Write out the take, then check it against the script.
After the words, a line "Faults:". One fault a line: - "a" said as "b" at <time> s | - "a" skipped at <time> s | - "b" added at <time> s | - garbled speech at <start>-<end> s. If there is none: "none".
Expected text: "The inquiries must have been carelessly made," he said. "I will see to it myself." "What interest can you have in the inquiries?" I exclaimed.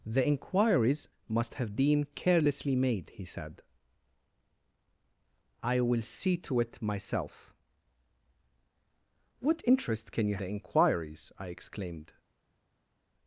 "The inquiries must have been carelessly made," he said. "I will see to it myself." "What interest can you the inquiries?" I exclaimed.
Faults:
- "have in" skipped at 10.4 s